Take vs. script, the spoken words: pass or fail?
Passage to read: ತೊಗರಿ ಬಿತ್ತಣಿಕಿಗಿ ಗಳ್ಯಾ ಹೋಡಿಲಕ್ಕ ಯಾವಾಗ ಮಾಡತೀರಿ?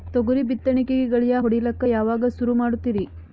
fail